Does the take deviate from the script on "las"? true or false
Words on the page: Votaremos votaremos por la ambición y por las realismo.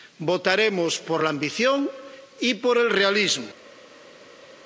true